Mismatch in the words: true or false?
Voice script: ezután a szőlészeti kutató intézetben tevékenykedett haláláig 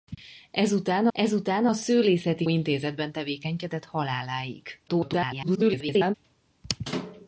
true